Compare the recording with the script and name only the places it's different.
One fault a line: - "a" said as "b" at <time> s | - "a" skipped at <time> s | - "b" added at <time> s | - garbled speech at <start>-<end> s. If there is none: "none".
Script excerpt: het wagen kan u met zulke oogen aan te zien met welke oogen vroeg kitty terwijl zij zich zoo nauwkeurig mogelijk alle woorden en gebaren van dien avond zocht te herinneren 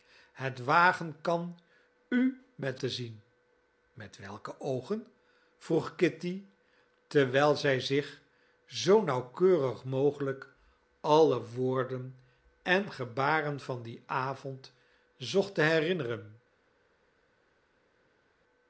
- "zulke oogen aan" skipped at 2.8 s